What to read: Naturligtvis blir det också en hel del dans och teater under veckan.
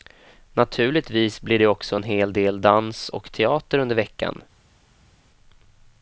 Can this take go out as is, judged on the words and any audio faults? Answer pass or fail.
pass